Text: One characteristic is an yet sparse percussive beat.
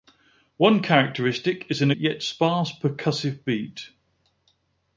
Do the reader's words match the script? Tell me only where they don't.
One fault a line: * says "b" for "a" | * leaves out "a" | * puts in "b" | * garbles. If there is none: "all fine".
all fine